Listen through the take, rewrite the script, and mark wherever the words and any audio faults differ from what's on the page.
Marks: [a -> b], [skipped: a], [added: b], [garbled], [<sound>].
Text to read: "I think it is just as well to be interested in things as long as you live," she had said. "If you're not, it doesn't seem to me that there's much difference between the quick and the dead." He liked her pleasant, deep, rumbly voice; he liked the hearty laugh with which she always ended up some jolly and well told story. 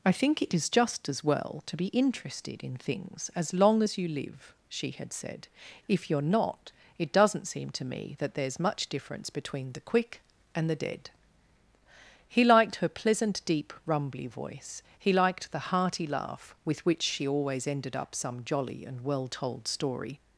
"I think it is just as well to be interested in things as long as you live," she had said. "If you're not, it doesn't seem to me that there's much difference between the quick and the dead." He liked her pleasant, deep, rumbly voice; he liked the hearty laugh with which she always ended up some jolly and well told story.